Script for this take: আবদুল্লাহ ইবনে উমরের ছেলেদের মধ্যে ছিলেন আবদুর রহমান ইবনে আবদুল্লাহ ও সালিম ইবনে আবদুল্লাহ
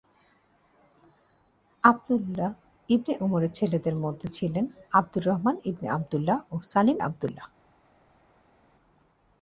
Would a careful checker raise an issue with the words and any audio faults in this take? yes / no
yes